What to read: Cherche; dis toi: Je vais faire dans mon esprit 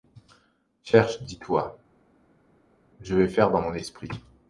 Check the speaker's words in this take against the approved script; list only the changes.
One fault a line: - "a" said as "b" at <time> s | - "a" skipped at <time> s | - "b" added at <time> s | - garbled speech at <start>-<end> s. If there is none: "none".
none